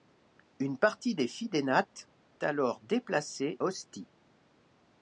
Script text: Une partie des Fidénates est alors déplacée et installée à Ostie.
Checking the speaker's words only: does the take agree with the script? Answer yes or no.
no